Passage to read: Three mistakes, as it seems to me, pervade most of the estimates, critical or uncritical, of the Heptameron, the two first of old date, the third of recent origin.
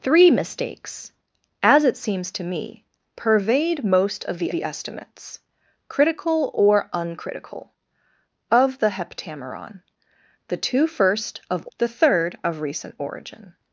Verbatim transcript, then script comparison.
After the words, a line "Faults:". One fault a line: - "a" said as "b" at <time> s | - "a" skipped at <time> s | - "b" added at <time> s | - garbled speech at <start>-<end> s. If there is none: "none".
Three mistakes, as it seems to me, pervade most of the the estimates, critical or uncritical, of the Heptameron, the two first of the third of recent origin.
Faults:
- "the" added at 4.5 s
- "old date" skipped at 11.7 s